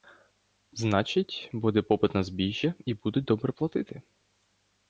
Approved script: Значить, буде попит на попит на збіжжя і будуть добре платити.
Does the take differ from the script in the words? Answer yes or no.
yes